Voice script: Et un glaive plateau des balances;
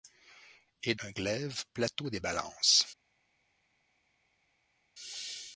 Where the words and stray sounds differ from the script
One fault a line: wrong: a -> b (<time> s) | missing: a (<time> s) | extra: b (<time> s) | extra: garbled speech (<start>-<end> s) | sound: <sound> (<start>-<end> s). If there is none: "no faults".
no faults